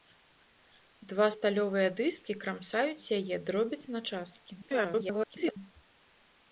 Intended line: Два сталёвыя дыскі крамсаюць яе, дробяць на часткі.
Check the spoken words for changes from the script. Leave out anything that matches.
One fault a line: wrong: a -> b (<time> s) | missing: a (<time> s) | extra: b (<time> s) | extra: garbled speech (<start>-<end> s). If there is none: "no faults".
extra: garbled speech (4.6-5.6 s)